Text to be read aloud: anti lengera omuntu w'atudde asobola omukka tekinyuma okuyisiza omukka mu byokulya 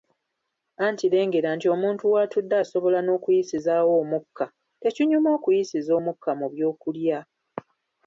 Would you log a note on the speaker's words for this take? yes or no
yes